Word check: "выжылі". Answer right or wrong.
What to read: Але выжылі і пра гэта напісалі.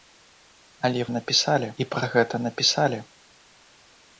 wrong